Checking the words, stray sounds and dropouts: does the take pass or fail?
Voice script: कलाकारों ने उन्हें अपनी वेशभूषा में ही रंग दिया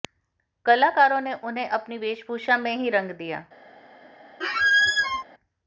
fail